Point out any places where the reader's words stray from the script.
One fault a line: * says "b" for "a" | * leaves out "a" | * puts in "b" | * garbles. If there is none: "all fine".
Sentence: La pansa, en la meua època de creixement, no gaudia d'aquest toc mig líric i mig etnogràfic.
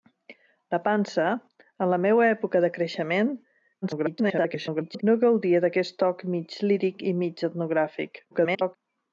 * garbles
* garbles